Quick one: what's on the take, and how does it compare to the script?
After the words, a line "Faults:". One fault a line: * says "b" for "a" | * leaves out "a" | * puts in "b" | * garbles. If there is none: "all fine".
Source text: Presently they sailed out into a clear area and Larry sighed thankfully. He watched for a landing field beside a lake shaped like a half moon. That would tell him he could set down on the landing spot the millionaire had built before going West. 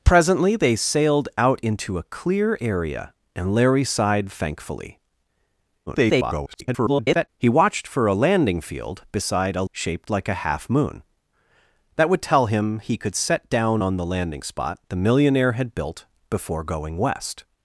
Presently they sailed out into a clear area and Larry sighed thankfully. [garbled] He watched for a landing field beside a shaped like a half moon. That would tell him he could set down on the landing spot the millionaire had built before going West.
Faults:
* garbles
* leaves out "lake"